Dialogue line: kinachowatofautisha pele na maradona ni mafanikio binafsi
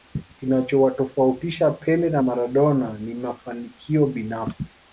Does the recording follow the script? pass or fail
pass